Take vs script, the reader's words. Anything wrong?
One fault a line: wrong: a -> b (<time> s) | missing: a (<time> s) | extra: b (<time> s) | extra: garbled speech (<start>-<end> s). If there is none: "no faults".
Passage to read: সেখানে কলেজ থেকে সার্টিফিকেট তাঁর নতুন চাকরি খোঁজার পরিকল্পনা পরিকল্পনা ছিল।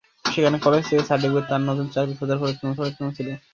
no faults